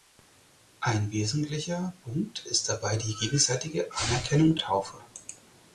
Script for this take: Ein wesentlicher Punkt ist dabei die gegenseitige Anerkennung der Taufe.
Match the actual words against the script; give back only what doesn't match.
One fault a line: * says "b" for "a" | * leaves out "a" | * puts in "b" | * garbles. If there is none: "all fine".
* leaves out "der"